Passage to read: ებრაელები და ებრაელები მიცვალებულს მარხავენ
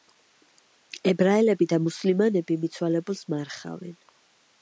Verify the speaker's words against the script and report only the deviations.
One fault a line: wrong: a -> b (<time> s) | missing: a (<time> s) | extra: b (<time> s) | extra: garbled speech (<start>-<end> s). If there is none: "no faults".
wrong: ებრაელები -> მუსლიმანები (1.9 s)